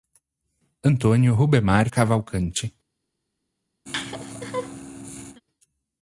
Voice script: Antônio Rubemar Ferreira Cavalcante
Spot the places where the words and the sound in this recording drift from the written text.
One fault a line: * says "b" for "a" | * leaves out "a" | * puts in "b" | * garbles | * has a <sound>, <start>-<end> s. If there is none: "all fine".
* leaves out "Ferreira"
* has a laugh, 3.9-5.4 s